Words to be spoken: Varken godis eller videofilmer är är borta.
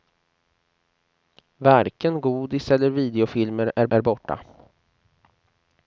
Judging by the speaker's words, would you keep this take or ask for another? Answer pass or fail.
pass